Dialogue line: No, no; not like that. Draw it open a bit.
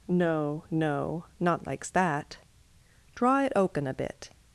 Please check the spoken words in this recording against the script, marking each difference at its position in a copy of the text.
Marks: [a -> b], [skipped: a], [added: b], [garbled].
No, no; not [like -> likes] that. Draw it open a bit.